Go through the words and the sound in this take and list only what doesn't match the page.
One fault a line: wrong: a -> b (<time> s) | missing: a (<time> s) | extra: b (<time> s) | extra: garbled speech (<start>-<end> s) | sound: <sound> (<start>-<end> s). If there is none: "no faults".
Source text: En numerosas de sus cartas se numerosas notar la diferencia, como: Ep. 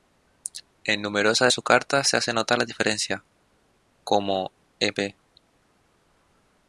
wrong: numerosas -> hace (2.2 s)